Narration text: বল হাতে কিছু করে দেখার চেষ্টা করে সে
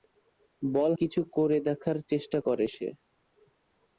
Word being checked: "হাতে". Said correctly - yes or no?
no